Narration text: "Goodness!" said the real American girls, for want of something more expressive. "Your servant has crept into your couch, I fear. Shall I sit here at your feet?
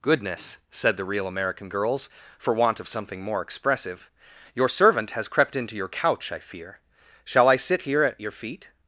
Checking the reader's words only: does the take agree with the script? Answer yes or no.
yes